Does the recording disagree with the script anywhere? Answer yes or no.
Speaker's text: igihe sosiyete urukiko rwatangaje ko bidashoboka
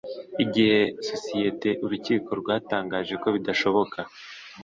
no